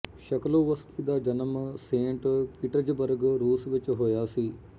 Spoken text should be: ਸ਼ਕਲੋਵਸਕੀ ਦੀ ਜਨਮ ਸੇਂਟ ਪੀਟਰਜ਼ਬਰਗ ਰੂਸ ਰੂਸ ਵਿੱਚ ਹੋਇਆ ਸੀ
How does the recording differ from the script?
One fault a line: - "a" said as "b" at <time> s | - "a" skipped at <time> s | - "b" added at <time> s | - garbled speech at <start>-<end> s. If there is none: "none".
- "ਦੀ" said as "ਦਾ" at 1.0 s
- "ਰੂਸ" skipped at 3.7 s